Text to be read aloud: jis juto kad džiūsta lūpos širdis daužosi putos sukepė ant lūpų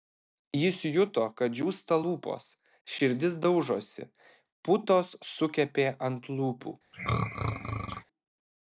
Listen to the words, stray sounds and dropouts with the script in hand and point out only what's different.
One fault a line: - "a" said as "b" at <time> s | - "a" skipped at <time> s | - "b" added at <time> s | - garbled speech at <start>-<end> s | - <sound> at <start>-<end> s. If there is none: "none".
- throat clearing at 6.9-8.0 s